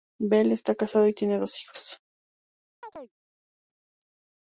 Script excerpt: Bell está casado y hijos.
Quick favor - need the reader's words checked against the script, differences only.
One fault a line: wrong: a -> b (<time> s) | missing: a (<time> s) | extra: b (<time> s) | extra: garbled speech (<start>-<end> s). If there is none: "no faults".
extra: tiene dos (1.1 s)